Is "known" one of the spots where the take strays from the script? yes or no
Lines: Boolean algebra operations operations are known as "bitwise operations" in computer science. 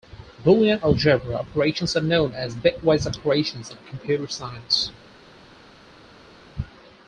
no